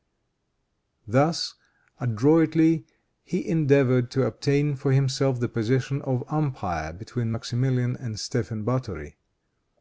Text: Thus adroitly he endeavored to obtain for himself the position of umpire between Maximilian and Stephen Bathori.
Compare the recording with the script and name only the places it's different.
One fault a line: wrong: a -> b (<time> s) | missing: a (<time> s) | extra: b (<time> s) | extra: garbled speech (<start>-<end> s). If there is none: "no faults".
no faults